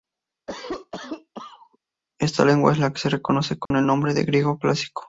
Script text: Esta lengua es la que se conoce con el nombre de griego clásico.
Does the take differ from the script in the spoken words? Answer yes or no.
no